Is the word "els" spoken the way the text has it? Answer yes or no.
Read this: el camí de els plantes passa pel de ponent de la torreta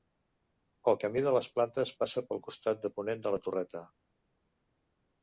no